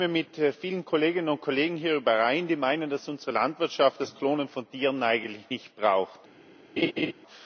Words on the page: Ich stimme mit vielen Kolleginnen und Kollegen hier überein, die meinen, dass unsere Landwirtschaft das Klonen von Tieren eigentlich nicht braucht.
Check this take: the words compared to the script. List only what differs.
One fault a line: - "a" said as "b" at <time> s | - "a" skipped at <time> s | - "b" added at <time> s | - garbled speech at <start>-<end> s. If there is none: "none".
none